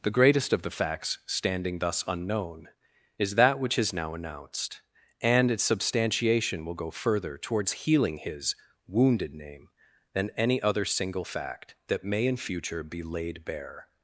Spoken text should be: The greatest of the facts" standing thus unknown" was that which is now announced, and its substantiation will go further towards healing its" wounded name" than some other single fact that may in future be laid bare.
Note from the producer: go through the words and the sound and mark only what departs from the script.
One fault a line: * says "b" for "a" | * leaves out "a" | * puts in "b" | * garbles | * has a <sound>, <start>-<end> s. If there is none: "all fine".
* says "is" for "was"
* says "his" for "its"
* says "any" for "some"